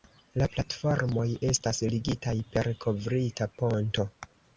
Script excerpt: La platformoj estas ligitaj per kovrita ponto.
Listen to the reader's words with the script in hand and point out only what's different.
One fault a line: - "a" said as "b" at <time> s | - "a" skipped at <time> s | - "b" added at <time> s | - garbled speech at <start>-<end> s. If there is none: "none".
none